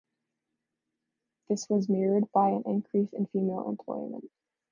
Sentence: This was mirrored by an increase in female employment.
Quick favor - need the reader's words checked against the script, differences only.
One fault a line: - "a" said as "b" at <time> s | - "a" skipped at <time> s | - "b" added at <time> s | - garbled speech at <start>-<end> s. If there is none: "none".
none